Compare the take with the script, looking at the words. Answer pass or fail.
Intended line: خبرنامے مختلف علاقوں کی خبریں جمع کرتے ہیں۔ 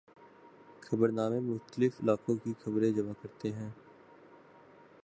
pass